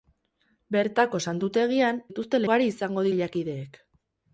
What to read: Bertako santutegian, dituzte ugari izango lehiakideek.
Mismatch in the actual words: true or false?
false